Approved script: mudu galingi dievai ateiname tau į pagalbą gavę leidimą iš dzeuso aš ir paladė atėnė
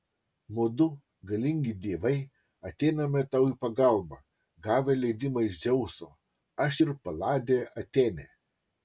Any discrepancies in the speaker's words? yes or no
no